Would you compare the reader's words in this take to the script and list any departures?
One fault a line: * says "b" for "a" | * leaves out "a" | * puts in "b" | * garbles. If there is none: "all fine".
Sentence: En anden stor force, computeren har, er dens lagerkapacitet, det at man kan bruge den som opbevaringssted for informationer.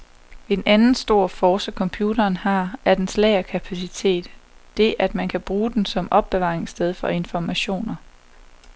all fine